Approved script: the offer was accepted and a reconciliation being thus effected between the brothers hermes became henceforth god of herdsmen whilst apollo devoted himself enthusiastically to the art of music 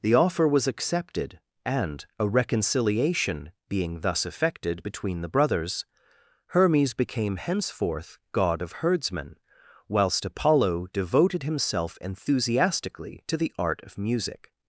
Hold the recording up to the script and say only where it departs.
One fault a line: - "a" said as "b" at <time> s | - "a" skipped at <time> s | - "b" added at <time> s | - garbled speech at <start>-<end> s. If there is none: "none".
none